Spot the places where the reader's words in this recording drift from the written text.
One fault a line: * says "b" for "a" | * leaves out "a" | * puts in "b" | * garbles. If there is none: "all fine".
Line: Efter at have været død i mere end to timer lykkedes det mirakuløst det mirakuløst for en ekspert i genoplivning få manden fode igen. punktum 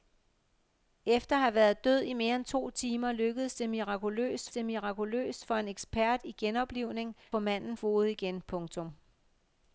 all fine